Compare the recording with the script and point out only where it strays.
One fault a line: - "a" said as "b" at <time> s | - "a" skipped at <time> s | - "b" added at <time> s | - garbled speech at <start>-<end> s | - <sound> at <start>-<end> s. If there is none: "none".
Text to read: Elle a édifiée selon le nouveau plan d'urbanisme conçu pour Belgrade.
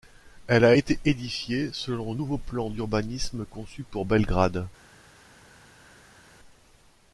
- "été" added at 0.7 s